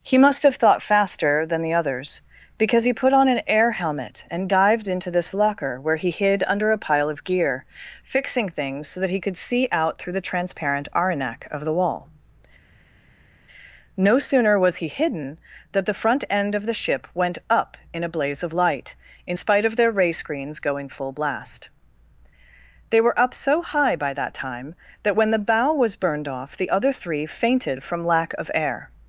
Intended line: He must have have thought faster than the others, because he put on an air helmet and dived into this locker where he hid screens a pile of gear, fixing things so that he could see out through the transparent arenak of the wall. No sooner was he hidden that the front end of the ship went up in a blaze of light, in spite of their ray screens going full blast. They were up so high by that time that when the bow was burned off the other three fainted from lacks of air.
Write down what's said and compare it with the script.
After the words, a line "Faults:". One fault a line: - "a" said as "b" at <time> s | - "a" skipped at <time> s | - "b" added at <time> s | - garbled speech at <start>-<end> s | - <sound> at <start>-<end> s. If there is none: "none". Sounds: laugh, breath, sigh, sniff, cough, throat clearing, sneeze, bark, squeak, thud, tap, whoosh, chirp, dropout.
He must have thought faster than the others, because he put on an air helmet and dived into this locker where he hid under a pile of gear, fixing things so that he could see out through the transparent arenak of the wall. No sooner was he hidden that the front end of the ship went up in a blaze of light, in spite of their ray screens going full blast. They were up so high by that time that when the bow was burned off the other three fainted from lack of air.
Faults:
- "have" skipped at 0.6 s
- "screens" said as "under" at 6.5 s
- "lacks" said as "lack" at 28.0 s